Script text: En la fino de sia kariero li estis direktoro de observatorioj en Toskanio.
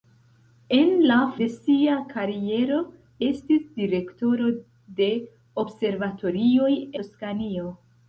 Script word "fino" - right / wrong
wrong